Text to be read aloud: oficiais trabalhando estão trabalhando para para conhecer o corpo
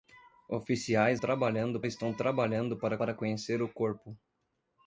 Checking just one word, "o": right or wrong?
right